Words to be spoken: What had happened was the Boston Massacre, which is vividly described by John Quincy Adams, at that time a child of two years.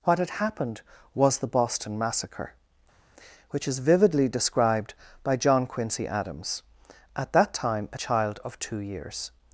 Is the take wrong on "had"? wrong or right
right